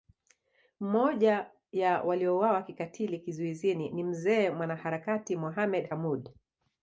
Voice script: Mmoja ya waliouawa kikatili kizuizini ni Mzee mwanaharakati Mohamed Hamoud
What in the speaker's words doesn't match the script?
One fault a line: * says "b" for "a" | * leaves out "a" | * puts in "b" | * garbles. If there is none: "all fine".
all fine